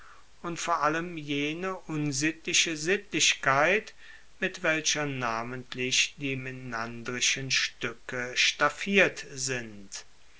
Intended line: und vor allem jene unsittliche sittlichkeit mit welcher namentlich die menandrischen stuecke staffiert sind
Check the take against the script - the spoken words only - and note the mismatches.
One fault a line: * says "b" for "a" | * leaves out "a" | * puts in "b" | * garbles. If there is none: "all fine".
all fine